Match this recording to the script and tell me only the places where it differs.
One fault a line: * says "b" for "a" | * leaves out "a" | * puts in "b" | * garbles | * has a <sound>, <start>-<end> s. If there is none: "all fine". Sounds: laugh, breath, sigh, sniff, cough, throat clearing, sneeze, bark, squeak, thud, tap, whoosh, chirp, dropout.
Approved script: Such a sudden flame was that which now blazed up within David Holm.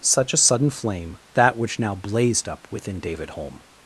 * leaves out "was"